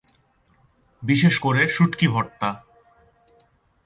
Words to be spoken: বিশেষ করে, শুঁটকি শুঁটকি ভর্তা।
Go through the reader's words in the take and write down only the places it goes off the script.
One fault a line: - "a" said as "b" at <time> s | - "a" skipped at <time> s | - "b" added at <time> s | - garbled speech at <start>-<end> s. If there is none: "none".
- "শুঁটকি" skipped at 2.1 s